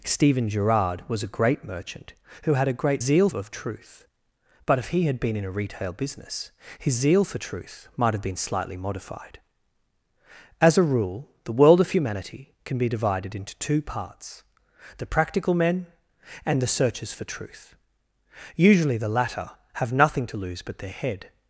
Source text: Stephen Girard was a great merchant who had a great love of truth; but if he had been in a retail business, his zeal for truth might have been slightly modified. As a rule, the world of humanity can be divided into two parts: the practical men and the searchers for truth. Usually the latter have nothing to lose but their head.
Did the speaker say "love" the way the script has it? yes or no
no